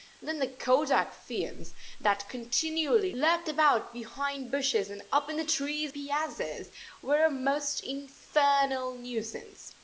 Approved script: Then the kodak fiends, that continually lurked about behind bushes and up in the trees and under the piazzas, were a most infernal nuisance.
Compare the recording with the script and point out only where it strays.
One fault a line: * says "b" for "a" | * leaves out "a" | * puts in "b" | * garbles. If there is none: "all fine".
* leaves out "and under the"